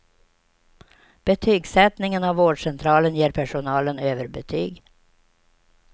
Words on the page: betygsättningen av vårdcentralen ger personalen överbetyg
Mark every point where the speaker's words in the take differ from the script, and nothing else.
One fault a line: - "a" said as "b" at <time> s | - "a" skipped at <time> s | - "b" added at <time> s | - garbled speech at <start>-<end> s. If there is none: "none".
none